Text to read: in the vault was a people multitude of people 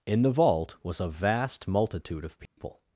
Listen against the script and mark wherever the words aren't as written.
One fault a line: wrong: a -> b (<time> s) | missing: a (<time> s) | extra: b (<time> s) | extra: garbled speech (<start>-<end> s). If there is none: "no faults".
wrong: people -> vast (1.1 s)